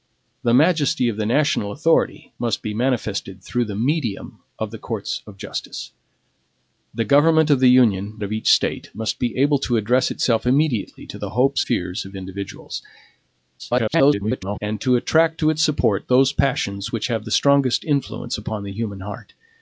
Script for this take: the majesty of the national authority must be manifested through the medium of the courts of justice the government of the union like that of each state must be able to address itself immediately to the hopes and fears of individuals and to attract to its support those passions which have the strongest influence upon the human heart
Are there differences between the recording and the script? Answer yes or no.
yes